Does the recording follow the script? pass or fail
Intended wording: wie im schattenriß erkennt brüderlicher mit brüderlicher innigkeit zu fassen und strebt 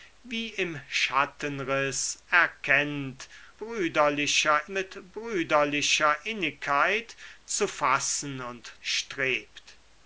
pass